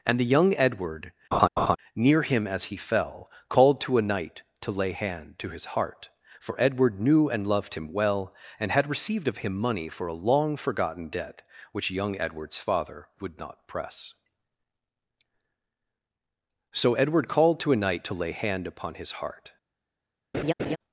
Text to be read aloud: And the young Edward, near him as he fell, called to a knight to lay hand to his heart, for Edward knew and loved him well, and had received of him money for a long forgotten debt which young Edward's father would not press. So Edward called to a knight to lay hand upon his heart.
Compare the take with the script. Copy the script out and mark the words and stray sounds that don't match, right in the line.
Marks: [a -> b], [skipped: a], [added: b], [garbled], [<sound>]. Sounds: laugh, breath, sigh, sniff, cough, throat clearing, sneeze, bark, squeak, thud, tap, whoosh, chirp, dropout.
And the young Edward, [laugh] near him as he fell, called to a knight to lay hand to his heart, for Edward knew and loved him well, and had received of him money for a long forgotten debt which young Edward's father would not press. So Edward called to a knight to lay hand upon his heart. [laugh]